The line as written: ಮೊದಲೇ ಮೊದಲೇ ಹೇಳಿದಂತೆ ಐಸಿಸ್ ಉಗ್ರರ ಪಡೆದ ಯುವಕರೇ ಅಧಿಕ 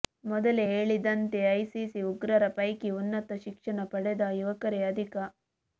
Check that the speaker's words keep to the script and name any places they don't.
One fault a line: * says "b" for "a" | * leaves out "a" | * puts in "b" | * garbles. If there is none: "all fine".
* leaves out "ಮೊದಲೇ"
* puts in "ಪೈಕಿ ಉನ್ನತ ಶಿಕ್ಷಣ"